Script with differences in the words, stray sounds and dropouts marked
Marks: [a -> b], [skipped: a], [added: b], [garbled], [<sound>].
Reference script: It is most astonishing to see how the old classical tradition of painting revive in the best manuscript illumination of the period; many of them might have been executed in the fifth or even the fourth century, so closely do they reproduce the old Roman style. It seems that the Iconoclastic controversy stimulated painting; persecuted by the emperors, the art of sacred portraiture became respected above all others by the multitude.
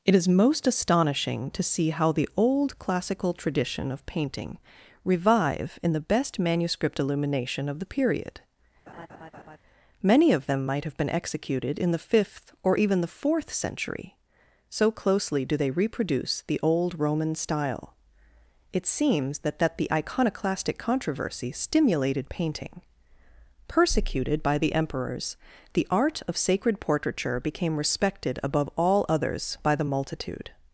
It is most astonishing to see how the old classical tradition of painting revive in the best manuscript illumination of the period; [laugh] many of them might have been executed in the fifth or even the fourth century, so closely do they reproduce the old Roman style. It seems that [added: that] the Iconoclastic controversy stimulated painting; persecuted by the emperors, the art of sacred portraiture became respected above all others by the multitude.